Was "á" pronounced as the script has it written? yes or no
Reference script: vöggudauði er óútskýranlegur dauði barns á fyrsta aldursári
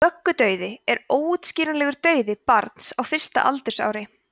yes